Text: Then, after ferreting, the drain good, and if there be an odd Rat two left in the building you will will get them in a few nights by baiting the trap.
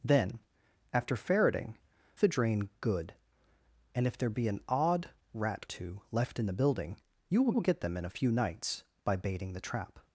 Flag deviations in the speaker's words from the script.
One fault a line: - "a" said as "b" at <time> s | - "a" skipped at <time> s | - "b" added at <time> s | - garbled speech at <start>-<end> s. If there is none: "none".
none